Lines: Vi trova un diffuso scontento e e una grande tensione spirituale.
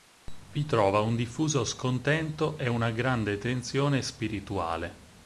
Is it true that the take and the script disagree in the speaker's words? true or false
true